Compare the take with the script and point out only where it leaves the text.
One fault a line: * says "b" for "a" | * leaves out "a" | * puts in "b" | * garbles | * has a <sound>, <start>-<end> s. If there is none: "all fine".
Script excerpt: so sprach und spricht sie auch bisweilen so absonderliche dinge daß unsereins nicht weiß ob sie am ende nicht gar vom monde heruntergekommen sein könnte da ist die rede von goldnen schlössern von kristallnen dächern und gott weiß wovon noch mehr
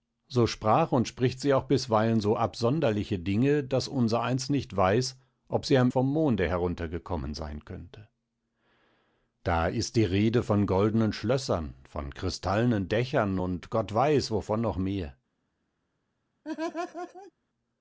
* leaves out "ende nicht gar"
* has a laugh, 16.4-17.3 s